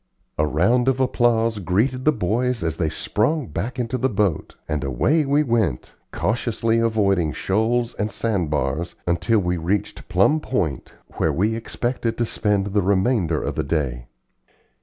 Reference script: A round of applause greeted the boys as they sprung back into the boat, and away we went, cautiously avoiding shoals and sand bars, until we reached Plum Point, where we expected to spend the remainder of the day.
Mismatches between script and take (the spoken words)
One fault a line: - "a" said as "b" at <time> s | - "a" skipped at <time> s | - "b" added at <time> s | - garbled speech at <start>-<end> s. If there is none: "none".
none